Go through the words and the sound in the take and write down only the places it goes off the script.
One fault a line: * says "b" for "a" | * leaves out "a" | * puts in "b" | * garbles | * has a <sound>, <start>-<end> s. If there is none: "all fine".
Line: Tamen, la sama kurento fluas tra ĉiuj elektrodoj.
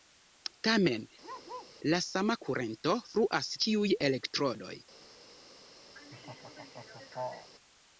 * has a bark, 1.2-1.8 s
* leaves out "tra"
* has a laugh, 5.9-7.5 s